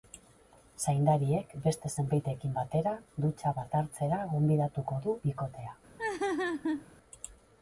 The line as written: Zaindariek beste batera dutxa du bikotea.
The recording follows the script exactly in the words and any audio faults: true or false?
false